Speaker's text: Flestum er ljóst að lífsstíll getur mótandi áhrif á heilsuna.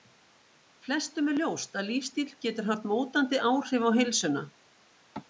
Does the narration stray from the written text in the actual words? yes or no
yes